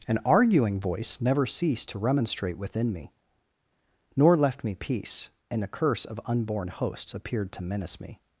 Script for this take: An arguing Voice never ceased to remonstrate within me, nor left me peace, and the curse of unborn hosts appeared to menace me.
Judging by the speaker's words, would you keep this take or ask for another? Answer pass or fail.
pass